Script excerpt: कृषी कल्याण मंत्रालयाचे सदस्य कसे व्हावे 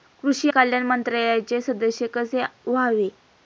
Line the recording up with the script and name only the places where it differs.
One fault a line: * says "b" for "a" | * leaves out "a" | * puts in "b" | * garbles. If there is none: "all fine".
all fine